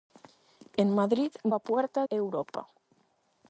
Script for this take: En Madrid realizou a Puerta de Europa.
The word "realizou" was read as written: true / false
false